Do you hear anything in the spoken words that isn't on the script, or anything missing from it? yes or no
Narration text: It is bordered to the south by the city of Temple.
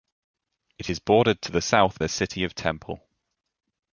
yes